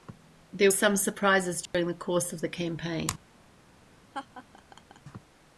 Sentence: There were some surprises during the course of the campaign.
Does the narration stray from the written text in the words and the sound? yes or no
yes